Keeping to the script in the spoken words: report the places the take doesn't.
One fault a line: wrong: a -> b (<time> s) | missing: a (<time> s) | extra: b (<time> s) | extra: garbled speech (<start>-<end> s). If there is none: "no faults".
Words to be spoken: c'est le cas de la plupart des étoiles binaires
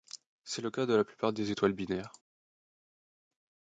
no faults